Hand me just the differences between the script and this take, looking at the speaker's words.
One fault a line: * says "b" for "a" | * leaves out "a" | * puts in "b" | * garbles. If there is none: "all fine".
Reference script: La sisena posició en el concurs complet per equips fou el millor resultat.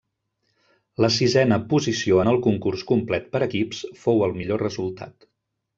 all fine